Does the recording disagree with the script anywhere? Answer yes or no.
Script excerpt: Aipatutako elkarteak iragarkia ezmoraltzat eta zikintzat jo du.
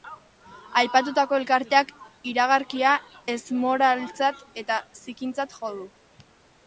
no